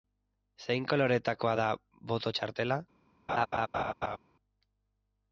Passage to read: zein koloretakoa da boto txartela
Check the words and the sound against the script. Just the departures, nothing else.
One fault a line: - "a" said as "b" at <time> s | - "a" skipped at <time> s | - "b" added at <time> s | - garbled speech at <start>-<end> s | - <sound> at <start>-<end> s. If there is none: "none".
- laugh at 3.3-4.2 s